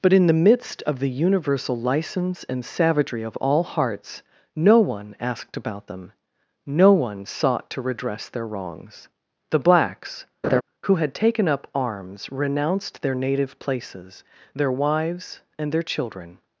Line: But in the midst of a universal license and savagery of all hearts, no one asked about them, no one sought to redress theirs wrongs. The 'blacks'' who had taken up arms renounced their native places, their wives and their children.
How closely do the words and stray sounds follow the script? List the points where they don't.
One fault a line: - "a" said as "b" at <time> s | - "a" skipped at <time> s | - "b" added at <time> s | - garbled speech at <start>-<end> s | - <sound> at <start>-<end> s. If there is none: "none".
- "a" said as "the" at 1.0 s
- "theirs" said as "their" at 8.3 s
- laugh at 10.4-10.6 s